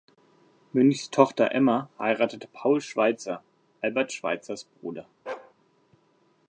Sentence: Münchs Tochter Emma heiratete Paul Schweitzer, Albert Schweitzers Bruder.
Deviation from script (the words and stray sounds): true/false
true